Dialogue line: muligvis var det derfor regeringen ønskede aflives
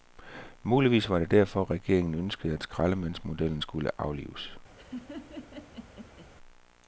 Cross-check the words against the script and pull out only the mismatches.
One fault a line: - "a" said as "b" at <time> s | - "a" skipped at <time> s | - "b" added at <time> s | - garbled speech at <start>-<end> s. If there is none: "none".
- "at skraldemandsmodellen skulle" added at 2.5 s